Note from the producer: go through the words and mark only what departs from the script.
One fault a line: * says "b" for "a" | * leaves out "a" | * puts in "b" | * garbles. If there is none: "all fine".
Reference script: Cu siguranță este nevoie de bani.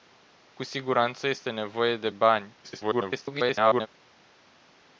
* garbles